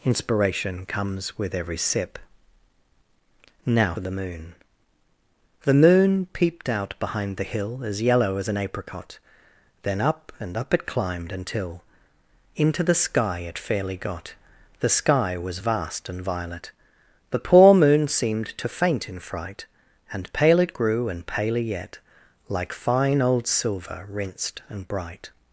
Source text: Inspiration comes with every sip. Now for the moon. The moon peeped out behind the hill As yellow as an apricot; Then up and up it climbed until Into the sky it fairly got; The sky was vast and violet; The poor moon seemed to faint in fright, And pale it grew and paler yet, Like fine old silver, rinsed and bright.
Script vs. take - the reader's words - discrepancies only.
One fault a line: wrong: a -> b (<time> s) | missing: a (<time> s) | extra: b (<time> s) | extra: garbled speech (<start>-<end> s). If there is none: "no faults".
missing: for (3.9 s)